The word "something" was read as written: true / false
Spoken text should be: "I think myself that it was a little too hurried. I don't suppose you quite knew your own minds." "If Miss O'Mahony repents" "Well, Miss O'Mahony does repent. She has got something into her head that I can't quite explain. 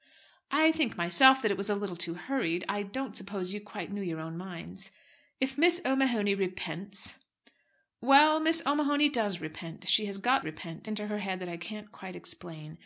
false